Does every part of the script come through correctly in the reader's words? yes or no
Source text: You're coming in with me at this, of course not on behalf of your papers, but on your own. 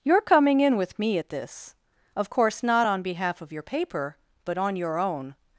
no